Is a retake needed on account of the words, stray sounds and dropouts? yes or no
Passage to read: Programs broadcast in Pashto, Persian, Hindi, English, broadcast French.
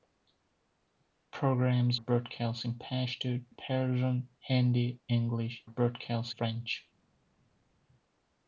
no